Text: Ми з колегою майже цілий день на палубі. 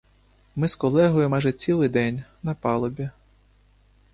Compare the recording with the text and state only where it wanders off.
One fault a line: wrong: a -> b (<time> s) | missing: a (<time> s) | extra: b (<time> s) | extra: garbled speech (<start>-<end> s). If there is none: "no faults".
no faults